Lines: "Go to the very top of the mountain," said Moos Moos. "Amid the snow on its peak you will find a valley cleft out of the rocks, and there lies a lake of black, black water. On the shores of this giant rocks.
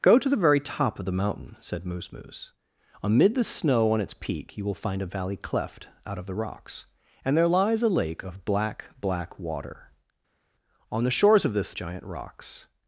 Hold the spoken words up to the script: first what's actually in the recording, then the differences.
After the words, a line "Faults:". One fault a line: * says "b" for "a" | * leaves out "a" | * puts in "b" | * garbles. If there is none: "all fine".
"Go to the very top of the mountain," said Moos Moos. "Amid the snow on its peak you will find a valley cleft out of the rocks, and there lies a lake of black, black water. On the shores of this giant rocks.
Faults:
all fine